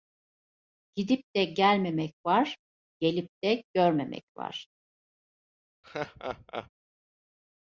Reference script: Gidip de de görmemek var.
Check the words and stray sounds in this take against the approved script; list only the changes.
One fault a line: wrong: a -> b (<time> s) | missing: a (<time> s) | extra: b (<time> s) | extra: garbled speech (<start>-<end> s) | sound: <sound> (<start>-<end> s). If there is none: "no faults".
extra: gelmemek var gelip (1.4 s)
sound: laugh (5.8-6.7 s)